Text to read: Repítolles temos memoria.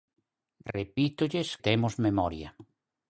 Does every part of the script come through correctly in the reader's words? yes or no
yes